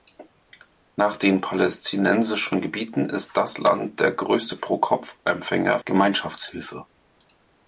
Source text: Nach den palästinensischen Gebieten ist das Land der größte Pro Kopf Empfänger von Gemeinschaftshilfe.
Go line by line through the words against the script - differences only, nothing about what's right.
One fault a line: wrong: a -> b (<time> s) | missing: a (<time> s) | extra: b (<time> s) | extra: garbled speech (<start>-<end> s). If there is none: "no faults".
missing: von (5.8 s)